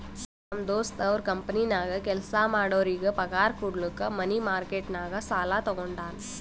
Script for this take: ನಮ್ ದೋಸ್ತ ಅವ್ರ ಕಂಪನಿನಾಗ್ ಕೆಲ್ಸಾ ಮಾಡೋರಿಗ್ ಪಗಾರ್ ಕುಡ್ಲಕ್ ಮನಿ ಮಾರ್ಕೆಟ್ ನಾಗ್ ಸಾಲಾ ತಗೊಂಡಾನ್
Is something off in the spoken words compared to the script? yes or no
no